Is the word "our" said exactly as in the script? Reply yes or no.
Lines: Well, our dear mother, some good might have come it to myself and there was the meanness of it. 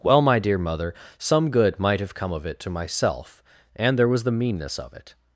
no